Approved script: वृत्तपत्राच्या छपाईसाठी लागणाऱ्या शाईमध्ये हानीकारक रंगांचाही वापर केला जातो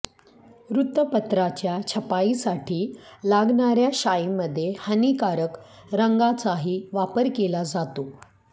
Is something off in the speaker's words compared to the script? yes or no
no